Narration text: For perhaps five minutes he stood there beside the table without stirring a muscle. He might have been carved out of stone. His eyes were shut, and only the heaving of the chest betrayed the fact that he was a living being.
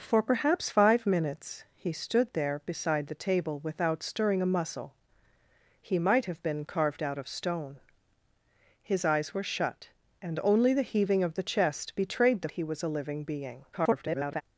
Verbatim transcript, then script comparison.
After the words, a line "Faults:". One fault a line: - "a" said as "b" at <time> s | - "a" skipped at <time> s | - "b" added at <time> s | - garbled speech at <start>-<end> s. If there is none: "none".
For perhaps five minutes he stood there beside the table without stirring a muscle. He might have been carved out of stone. His eyes were shut, and only the heaving of the chest betrayed the he was a living being. [garbled]
Faults:
- "fact that" skipped at 12.5 s
- garbled speech at 13.7-14.4 s